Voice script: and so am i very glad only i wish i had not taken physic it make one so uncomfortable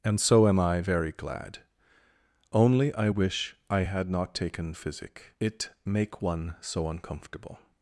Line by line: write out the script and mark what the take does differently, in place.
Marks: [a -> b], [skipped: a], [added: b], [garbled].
and so am i very glad only i wish i had not taken physic it make one so uncomfortable